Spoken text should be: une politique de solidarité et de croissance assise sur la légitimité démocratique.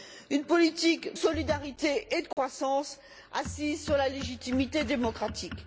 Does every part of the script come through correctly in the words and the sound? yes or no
no